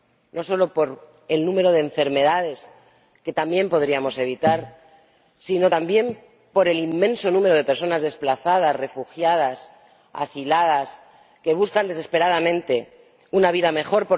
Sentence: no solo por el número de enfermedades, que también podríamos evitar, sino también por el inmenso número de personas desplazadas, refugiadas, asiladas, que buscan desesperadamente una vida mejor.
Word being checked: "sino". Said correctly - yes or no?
yes